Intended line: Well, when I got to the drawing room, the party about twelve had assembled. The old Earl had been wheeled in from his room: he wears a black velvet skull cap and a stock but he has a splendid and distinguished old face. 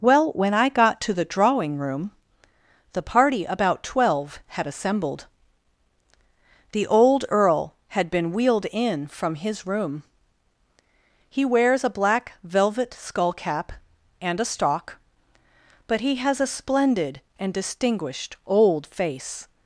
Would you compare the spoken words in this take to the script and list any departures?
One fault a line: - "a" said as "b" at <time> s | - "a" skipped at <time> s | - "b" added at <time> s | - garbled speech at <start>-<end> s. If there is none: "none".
none